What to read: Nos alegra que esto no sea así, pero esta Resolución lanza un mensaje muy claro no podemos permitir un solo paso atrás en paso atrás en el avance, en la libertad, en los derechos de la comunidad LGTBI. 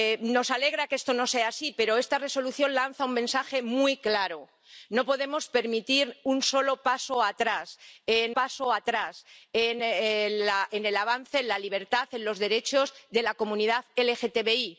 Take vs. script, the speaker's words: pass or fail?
pass